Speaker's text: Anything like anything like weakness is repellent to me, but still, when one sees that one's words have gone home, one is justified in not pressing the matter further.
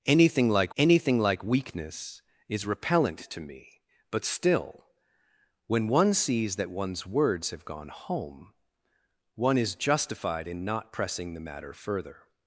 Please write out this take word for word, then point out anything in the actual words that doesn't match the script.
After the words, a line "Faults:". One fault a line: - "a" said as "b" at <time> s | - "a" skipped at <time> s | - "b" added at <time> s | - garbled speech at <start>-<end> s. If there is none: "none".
Anything like anything like weakness is repellent to me, but still, when one sees that one's words have gone home, one is justified in not pressing the matter further.
Faults:
none